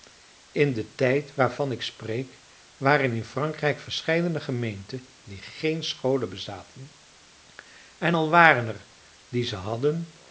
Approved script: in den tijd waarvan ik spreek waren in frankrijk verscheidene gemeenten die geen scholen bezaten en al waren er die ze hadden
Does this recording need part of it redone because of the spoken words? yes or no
no